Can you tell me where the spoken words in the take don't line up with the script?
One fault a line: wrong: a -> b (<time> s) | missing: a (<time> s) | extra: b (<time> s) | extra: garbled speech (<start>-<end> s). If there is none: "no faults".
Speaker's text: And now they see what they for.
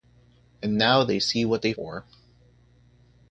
no faults